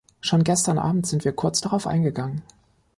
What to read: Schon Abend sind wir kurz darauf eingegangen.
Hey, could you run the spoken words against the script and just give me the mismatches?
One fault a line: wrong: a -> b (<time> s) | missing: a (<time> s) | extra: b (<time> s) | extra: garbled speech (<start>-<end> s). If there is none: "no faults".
extra: gestern (0.4 s)